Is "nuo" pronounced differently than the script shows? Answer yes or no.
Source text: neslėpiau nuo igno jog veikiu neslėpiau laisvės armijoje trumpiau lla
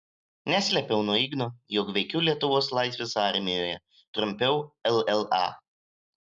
no